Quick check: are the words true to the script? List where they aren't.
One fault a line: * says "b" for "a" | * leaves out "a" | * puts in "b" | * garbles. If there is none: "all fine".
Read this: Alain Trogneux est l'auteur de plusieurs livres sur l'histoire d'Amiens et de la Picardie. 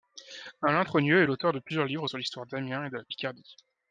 all fine